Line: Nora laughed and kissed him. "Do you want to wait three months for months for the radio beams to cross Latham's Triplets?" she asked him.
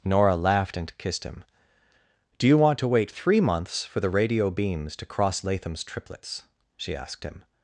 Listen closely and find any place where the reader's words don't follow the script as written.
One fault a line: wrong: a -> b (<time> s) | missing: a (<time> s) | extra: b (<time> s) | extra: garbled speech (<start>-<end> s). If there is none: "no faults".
missing: months for (4.0 s)